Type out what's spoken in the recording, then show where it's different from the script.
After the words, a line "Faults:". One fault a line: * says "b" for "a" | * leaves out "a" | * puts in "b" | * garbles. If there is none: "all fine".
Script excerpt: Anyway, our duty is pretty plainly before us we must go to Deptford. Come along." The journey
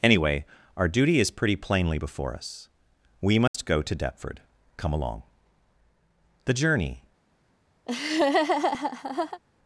Anyway, our duty is pretty plainly before us we must go to Deptford. Come along." The journey
Faults:
all fine